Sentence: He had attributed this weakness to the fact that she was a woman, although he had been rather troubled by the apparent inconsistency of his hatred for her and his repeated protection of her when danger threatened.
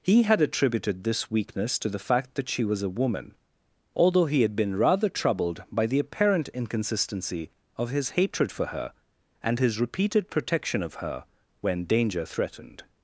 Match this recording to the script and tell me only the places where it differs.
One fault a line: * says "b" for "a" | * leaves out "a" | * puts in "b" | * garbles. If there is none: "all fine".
all fine